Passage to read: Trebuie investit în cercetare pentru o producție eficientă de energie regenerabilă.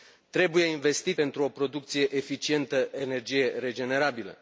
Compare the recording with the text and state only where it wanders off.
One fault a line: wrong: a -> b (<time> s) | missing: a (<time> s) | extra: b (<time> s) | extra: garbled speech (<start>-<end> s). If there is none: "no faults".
missing: în cercetare (1.2 s)
missing: de (2.9 s)